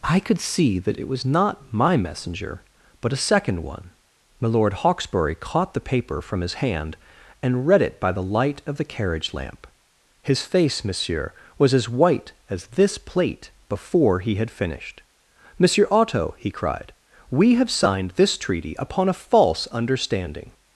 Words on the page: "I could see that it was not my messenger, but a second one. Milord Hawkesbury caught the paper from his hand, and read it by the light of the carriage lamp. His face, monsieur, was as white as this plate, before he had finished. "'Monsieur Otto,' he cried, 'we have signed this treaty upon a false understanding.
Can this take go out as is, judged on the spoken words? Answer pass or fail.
pass